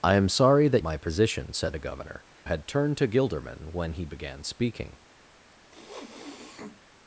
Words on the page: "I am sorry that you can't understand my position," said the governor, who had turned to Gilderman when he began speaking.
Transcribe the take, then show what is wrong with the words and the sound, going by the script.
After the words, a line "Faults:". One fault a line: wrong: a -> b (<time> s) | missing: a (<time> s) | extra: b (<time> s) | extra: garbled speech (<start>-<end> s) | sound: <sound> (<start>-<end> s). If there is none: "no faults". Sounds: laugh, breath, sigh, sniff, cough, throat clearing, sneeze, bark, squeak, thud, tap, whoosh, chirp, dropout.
"I am sorry that my position," said the governor, had turned to Gilderman when he began speaking.
Faults:
missing: you can't understand (0.8 s)
missing: who (2.2 s)
sound: sniff (5.7-6.8 s)